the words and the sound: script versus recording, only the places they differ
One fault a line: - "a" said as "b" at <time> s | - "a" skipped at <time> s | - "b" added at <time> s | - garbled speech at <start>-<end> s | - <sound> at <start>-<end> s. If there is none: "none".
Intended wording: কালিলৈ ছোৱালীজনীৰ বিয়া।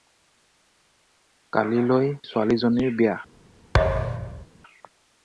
- thud at 3.7-4.5 s